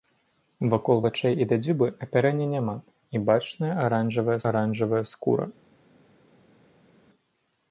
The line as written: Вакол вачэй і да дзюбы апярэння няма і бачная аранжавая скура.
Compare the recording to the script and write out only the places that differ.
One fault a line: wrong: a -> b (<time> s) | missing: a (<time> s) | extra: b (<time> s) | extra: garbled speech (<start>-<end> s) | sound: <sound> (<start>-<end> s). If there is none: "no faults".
extra: аранжавая (4.5 s)